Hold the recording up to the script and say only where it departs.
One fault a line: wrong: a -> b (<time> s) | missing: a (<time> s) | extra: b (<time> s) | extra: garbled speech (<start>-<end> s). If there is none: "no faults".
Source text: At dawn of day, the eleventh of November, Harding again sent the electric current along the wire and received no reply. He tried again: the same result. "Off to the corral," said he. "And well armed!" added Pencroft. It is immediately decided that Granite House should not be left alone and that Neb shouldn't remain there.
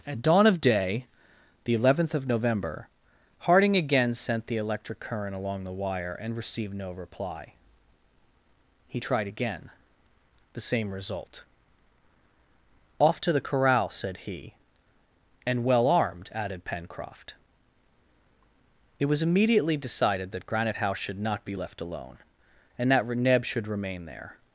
wrong: is -> was (19.1 s)
wrong: shouldn't -> should (23.5 s)